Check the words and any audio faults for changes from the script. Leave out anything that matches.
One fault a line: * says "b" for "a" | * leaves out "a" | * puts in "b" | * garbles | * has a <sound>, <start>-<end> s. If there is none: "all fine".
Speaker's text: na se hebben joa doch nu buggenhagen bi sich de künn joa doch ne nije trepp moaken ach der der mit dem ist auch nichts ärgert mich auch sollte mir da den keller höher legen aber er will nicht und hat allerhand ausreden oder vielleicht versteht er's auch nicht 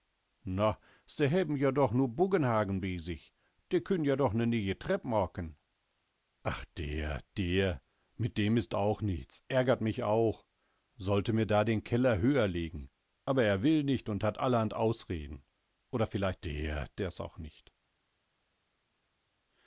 * says "der" for "versteht"